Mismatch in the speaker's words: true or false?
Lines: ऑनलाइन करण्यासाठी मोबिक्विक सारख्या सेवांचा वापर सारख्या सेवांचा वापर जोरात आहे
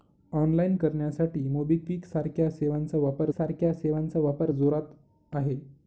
false